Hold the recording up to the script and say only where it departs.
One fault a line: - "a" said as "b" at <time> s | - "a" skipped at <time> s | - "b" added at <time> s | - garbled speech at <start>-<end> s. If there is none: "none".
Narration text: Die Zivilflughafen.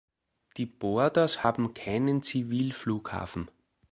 - "Borders haben keinen" added at 0.7 s